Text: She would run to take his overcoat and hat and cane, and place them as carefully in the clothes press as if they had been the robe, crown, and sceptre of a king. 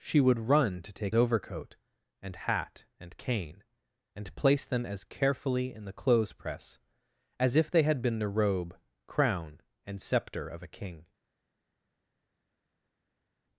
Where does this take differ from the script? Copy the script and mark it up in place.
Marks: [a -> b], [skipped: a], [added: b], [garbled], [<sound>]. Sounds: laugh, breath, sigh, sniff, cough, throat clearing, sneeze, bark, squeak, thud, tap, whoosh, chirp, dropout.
She would run to take [skipped: his] overcoat and hat and cane, and place them as carefully in the clothes press as if they had been the robe, crown, and sceptre of a king.